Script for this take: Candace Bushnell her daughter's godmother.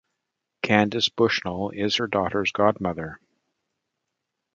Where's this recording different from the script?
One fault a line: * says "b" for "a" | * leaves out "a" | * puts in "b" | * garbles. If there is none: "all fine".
* puts in "is"